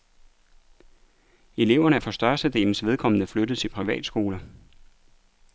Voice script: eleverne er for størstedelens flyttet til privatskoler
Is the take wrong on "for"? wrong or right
right